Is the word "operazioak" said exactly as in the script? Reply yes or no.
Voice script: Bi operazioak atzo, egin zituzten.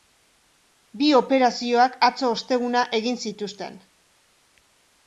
yes